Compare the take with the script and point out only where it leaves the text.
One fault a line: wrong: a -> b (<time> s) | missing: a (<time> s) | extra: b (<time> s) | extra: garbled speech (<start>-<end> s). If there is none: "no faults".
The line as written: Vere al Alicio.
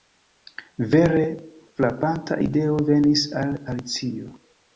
extra: frapanta ideo venis (1.8 s)